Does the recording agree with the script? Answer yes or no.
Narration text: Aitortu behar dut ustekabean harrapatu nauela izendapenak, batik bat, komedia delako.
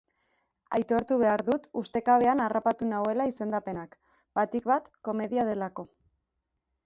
yes